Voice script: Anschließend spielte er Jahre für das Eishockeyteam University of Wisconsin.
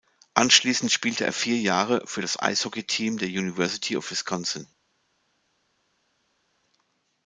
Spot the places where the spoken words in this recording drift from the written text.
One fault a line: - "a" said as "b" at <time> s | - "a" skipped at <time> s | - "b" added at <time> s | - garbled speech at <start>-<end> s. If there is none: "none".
- "vier" added at 1.3 s
- "der" added at 3.2 s